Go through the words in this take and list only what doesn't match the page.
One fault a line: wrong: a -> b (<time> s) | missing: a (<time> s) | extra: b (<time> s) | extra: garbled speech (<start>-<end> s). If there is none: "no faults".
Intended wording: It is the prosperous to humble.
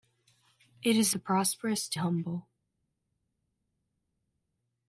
no faults